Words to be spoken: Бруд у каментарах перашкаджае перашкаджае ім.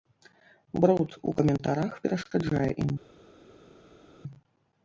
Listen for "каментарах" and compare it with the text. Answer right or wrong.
right